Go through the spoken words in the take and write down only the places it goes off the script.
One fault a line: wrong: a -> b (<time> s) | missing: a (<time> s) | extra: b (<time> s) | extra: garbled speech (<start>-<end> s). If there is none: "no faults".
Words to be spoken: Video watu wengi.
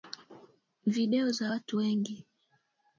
extra: za (1.3 s)